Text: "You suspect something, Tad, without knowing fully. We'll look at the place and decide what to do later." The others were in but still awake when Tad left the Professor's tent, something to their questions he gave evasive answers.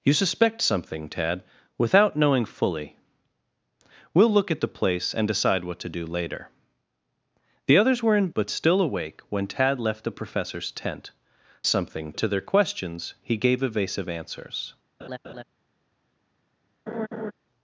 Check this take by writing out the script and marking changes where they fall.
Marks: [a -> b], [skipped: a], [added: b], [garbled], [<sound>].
"You suspect something, Tad, without knowing fully. We'll look at the place and decide what to do later." The others were in but still awake when Tad left the Professor's tent, something to their questions he gave evasive answers. [laugh] [laugh]